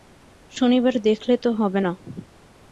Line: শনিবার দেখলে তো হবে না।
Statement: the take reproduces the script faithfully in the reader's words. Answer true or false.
true